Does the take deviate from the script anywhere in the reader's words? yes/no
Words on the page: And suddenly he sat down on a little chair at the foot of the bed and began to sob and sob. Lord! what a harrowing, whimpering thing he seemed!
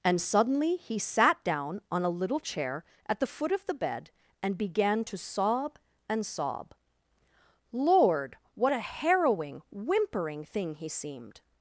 no